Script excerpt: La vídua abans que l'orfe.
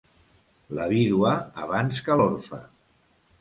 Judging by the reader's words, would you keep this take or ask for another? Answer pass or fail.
pass